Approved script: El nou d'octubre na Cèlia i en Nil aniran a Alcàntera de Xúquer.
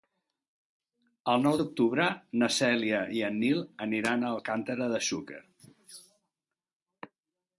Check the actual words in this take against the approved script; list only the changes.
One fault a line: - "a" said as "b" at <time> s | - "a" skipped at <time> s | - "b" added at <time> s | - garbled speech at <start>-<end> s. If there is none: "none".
none